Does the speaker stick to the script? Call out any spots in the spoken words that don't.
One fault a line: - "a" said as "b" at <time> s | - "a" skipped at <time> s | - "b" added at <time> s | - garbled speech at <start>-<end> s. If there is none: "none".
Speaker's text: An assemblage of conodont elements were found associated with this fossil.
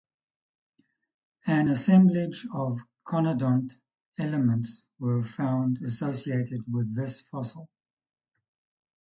none